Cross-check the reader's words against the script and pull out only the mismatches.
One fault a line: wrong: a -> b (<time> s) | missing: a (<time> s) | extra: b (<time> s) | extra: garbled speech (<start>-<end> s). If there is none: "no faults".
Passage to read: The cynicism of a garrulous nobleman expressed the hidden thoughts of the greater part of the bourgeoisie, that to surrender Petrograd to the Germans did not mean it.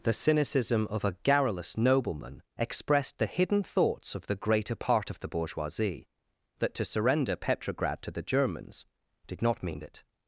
no faults